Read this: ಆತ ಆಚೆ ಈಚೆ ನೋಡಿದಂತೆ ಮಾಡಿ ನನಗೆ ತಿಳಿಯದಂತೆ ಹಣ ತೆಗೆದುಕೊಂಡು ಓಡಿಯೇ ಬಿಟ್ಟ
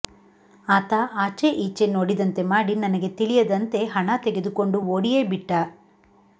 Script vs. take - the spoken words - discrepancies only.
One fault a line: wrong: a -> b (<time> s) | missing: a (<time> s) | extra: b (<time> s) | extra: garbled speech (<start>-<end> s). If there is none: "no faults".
no faults